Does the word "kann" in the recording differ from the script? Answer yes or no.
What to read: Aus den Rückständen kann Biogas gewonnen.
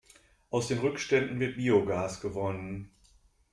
yes